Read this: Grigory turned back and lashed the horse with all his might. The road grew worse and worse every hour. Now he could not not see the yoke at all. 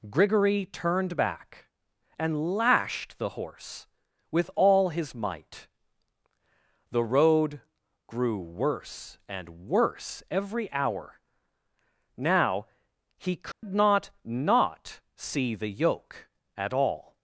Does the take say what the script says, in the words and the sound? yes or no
no